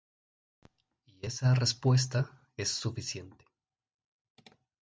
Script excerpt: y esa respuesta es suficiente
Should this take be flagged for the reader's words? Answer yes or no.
no